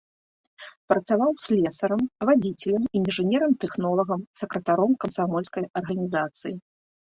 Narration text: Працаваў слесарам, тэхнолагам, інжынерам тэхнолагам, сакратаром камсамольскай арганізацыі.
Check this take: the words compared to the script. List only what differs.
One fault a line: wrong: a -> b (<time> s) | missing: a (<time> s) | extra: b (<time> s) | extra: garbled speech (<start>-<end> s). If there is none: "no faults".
wrong: тэхнолагам -> вадзіцелем (2.3 s)